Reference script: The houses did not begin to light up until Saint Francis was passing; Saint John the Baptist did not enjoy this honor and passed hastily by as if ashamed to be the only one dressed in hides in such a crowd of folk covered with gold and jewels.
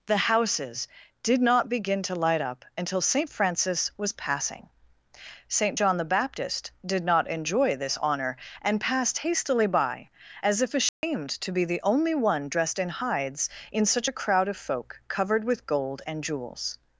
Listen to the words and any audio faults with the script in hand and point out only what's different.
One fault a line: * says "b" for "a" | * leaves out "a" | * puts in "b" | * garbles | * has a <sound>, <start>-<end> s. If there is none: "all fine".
* has a dropout, 10.9-11.0 s